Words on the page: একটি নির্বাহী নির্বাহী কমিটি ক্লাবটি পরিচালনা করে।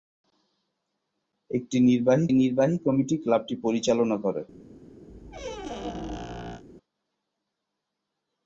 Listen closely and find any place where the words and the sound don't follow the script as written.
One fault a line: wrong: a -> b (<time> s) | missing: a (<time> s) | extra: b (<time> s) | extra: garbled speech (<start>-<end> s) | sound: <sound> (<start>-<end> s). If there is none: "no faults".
sound: squeak (5.1-6.6 s)